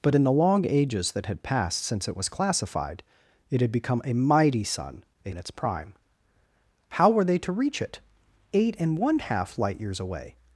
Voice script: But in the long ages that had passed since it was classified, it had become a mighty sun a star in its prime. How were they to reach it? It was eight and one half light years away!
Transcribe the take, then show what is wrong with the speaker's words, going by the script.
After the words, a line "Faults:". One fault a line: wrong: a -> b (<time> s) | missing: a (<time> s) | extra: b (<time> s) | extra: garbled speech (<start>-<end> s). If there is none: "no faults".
But in the long ages that had passed since it was classified, it had become a mighty sun a in its prime. How were they to reach it? Eight and one half light years away!
Faults:
missing: star (5.3 s)
missing: It was (8.0 s)